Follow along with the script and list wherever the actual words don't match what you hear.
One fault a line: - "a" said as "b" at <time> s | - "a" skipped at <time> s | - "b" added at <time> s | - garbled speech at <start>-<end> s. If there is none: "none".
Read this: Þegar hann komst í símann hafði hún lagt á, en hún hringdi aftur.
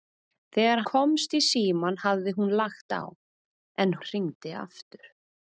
- "hann" skipped at 0.8 s
- "hún" skipped at 4.0 s